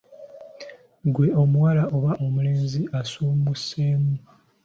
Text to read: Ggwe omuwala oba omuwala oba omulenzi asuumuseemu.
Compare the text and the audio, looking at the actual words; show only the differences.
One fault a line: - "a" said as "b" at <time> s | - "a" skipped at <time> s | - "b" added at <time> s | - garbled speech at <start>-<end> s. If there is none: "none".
- "omuwala oba" skipped at 2.1 s